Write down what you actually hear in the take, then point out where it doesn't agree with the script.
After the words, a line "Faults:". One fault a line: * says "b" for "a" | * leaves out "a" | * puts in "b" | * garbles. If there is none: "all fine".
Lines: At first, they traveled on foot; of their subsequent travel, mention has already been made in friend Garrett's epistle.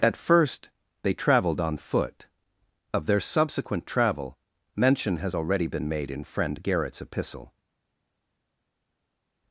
At first, they traveled on foot; of their subsequent travel, mention has already been made in friend Garrett's epistle.
Faults:
all fine